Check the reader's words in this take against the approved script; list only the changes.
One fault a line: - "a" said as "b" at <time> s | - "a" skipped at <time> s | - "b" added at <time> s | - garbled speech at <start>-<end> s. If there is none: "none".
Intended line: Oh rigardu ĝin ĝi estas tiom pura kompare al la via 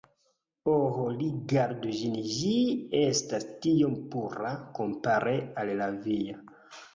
none